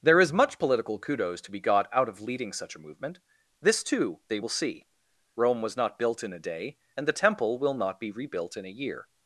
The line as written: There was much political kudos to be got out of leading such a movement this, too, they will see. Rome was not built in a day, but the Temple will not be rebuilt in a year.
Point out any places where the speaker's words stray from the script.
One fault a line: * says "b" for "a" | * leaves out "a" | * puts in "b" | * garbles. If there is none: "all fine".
* says "is" for "was"
* says "and" for "but"